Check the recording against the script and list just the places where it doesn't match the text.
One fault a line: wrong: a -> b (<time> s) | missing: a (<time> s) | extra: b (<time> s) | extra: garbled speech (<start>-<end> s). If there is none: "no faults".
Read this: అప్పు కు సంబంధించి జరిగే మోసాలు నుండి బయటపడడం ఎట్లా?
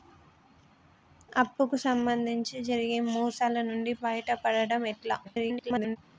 extra: garbled speech (5.2-6.0 s)